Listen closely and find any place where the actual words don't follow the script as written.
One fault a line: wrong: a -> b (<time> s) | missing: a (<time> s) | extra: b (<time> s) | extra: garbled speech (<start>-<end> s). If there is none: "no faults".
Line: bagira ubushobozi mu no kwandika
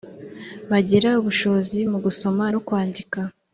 extra: gusoma (2.1 s)